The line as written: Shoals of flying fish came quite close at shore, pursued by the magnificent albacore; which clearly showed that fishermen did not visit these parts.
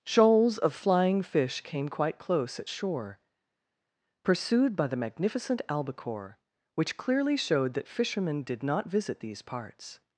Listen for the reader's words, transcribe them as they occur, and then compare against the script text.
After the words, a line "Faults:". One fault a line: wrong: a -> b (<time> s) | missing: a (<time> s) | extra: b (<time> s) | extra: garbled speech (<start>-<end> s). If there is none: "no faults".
Shoals of flying fish came quite close at shore, pursued by the magnificent albacore; which clearly showed that fishermen did not visit these parts.
Faults:
no faults